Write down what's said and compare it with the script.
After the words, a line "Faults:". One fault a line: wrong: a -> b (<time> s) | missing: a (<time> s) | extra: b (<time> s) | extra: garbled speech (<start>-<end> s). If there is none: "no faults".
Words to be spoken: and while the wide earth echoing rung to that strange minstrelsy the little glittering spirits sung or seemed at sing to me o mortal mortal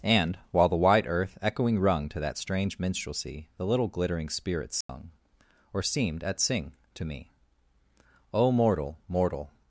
and while the wide earth echoing rung to that strange minstrelsy the little glittering spirits sung or seemed at sing to me o mortal mortal
Faults:
no faults